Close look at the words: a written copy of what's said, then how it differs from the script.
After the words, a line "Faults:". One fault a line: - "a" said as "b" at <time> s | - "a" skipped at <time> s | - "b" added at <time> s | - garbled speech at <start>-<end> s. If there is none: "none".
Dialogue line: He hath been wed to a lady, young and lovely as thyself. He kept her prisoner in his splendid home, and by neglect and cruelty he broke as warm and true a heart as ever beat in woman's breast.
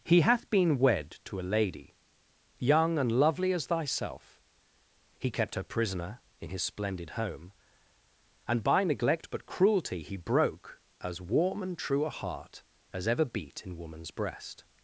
He hath been wed to a lady, young and lovely as thyself. He kept her prisoner in his splendid home, and by neglect but cruelty he broke as warm and true a heart as ever beat in woman's breast.
Faults:
- "and" said as "but" at 9.3 s